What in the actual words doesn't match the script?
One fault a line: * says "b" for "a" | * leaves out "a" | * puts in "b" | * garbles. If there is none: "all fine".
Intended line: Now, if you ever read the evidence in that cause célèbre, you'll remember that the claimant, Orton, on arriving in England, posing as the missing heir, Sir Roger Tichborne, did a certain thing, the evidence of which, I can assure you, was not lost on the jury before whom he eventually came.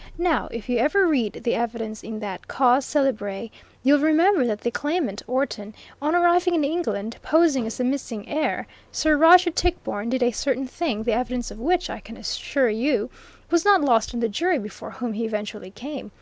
all fine